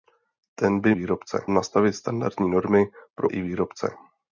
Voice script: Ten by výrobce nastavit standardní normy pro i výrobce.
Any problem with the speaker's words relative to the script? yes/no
no